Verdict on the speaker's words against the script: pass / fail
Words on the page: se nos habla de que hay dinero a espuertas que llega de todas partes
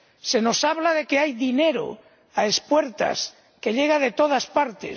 pass